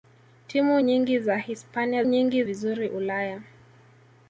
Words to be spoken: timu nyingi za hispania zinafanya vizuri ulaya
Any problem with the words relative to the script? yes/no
yes